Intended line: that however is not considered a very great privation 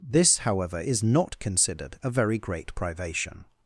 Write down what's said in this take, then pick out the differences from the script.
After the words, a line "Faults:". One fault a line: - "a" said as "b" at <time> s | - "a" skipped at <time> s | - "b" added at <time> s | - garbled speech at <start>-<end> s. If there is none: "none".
this however is not considered a very great privation
Faults:
- "that" said as "this" at 0.0 s